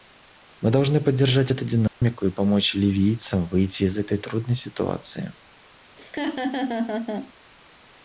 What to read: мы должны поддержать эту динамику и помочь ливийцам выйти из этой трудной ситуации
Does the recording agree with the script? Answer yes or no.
yes